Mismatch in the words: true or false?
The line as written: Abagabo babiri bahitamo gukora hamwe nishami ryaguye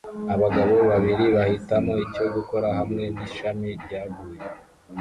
true